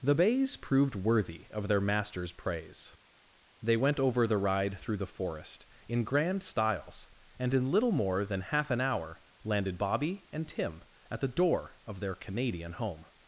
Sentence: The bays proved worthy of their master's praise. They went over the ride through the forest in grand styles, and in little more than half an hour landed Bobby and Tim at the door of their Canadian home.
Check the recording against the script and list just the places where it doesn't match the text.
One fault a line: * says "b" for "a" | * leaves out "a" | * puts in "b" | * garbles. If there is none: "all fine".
all fine